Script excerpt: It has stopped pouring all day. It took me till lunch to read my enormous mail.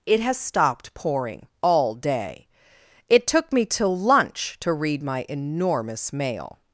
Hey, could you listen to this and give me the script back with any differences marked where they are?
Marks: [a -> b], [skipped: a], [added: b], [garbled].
It has stopped pouring all day. It took me till lunch to read my enormous mail.